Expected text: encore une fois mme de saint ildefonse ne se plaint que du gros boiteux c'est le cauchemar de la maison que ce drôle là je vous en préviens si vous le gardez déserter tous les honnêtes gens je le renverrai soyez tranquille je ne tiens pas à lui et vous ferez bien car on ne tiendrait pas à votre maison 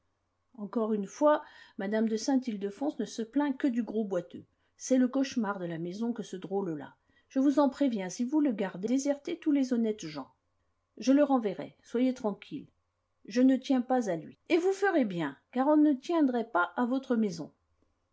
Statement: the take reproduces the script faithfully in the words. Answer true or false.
true